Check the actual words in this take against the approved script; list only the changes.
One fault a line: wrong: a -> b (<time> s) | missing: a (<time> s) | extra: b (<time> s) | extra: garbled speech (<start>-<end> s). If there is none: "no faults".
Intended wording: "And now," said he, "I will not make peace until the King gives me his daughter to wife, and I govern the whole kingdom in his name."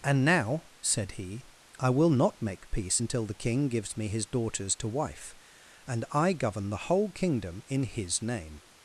wrong: daughter -> daughters (4.3 s)